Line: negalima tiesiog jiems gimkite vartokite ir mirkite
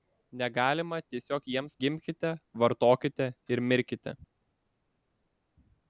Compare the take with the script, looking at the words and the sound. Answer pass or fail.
pass